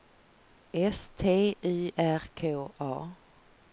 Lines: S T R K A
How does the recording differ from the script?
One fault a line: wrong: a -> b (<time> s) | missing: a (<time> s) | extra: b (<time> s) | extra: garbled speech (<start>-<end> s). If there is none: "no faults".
extra: Y (1.6 s)